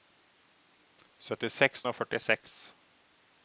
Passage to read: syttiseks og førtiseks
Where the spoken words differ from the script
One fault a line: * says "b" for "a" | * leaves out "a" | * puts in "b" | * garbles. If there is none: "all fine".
all fine